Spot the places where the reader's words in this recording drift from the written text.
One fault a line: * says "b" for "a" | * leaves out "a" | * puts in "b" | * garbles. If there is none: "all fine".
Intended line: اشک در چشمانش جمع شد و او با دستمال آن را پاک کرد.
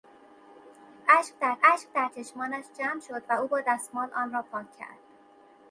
* puts in "اشک در"